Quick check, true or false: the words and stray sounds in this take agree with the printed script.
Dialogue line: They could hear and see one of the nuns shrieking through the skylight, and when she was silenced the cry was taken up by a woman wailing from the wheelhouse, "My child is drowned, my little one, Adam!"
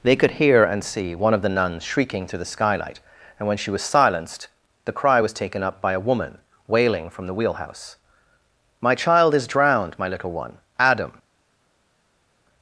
true